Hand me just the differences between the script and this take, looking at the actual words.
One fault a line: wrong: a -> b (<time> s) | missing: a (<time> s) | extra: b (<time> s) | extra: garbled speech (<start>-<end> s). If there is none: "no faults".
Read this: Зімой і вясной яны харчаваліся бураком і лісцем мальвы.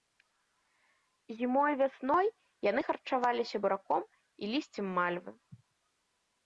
no faults